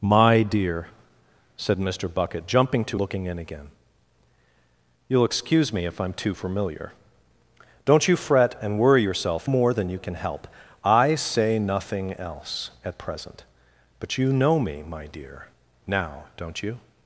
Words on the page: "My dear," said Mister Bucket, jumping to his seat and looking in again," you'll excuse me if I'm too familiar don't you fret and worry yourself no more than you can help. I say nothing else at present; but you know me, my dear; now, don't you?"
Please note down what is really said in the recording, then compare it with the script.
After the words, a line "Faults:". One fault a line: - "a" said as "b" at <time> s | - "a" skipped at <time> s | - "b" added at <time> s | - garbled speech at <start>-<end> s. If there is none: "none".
"My dear," said Mister Bucket, jumping to looking in again," you'll excuse me if I'm too familiar don't you fret and worry yourself more than you can help. I say nothing else at present; but you know me, my dear; now, don't you?"
Faults:
- "his seat and" skipped at 3.0 s
- "no" skipped at 9.5 s